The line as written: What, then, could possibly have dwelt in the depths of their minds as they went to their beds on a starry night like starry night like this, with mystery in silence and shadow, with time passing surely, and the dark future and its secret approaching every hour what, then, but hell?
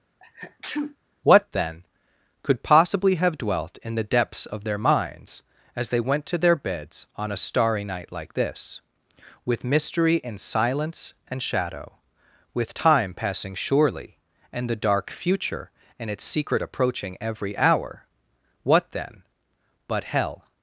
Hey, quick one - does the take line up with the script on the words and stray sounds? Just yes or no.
no